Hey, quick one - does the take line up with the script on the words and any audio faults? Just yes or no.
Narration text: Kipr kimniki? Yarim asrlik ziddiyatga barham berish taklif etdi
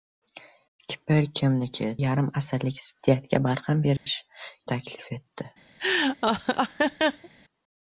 no